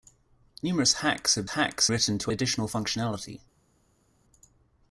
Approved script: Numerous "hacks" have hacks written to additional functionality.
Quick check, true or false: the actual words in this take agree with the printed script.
true